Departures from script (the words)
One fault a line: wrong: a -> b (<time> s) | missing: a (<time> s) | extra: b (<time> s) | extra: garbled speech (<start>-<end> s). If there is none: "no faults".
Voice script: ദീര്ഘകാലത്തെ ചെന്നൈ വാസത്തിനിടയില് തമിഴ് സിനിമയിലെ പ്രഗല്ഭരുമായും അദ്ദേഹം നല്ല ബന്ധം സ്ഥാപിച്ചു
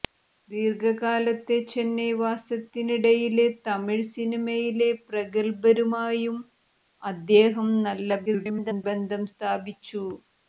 extra: garbled speech (8.3-8.8 s)